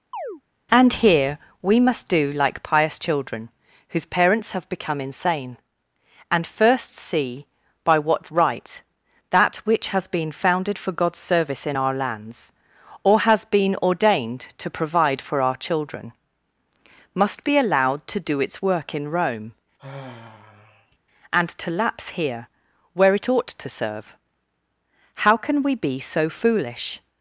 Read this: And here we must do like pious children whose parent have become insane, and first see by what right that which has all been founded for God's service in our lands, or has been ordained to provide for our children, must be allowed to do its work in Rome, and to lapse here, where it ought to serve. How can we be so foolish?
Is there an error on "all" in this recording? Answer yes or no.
yes